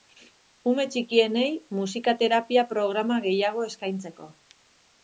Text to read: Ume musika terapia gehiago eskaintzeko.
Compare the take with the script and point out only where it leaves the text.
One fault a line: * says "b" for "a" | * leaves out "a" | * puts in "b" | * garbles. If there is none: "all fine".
* puts in "txikienei"
* puts in "programa"